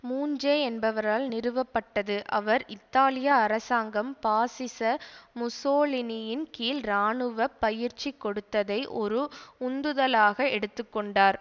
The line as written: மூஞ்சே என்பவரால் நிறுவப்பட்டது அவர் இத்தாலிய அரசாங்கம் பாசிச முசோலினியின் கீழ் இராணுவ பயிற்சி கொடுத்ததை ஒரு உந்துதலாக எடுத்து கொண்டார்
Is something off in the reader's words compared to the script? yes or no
no